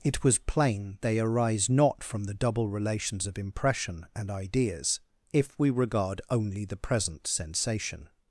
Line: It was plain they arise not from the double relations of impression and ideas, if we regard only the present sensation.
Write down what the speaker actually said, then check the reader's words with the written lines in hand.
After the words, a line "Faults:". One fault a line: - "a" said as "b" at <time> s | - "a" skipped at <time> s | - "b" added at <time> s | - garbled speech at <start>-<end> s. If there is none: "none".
It was plain they arise not from the double relations of impression and ideas, if we regard only the present sensation.
Faults:
none